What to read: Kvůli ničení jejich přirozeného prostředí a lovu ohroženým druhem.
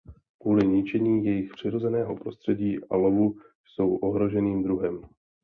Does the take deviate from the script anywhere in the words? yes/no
yes